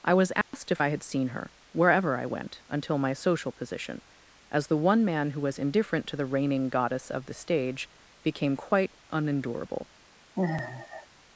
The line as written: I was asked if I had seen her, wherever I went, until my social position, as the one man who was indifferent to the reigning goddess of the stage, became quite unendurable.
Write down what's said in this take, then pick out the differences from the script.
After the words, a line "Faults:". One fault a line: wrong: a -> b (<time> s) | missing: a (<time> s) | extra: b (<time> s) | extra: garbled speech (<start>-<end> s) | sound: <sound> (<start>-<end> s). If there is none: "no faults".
I was asked if I had seen her, wherever I went, until my social position, as the one man who was indifferent to the reigning goddess of the stage, became quite unendurable.
Faults:
sound: dropout (0.4-0.5 s)
sound: sigh (10.4-11.1 s)